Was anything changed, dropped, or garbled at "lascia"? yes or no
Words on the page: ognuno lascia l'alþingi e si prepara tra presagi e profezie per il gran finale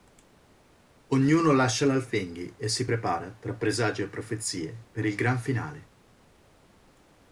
no